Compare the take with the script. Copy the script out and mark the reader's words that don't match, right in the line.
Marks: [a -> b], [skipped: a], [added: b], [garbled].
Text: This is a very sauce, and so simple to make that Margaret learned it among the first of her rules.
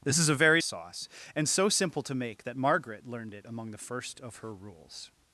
This is a very sauce, and so simple to make that Margaret learned it among the first of her rules.